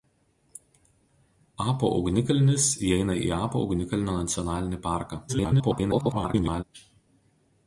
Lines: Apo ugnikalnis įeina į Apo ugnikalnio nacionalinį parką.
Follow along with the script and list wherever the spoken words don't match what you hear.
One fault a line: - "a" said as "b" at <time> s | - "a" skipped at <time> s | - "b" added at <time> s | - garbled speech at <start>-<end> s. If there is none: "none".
- garbled speech at 5.3-6.6 s